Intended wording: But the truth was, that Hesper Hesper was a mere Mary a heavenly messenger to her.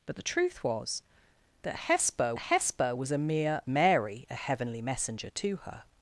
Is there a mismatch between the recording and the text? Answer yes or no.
no